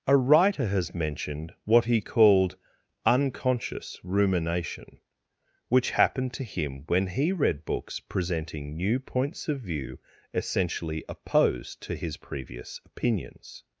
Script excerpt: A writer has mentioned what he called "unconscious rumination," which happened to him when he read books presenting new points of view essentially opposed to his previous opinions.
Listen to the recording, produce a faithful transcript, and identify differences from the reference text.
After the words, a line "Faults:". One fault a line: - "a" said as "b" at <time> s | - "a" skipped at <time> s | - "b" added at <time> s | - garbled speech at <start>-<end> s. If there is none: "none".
A writer has mentioned what he called "unconscious rumination," which happened to him when he read books presenting new points of view essentially opposed to his previous opinions.
Faults:
none